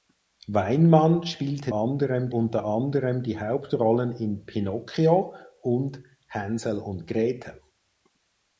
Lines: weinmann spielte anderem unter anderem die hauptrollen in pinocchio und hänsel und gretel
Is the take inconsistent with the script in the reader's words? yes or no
no